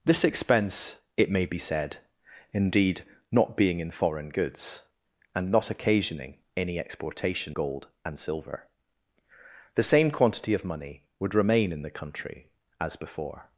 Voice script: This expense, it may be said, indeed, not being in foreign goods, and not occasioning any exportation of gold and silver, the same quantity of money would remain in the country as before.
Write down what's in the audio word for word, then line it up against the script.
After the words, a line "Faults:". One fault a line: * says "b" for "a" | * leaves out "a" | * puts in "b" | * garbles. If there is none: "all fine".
This expense, it may be said, indeed, not being in foreign goods, and not occasioning any exportation gold and silver, the same quantity of money would remain in the country as before.
Faults:
* leaves out "of"